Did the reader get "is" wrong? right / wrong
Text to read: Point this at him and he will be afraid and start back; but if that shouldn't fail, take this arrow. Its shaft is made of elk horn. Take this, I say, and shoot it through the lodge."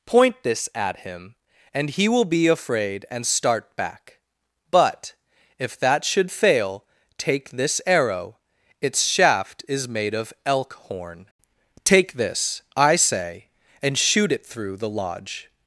right